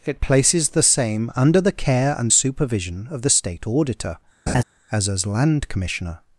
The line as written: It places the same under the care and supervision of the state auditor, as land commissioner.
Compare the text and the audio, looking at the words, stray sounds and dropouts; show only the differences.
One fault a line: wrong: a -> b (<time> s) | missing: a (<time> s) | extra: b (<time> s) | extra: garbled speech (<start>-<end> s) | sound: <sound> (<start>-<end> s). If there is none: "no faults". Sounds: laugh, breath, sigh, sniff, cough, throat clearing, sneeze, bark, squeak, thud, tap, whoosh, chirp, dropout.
sound: laugh (4.5-4.6 s)
extra: as (5.1 s)